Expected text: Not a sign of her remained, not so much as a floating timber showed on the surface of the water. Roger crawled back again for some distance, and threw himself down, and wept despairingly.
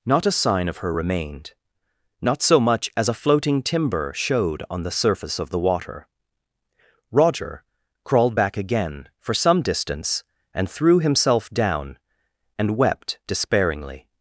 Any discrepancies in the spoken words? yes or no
no